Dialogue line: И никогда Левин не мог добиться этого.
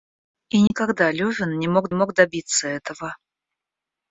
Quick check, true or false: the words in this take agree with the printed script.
false